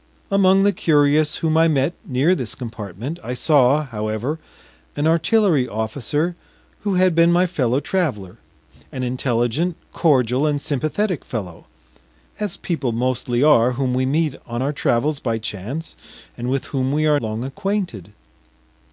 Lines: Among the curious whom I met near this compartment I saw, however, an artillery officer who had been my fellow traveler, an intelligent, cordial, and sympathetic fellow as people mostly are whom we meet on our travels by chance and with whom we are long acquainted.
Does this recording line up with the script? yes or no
yes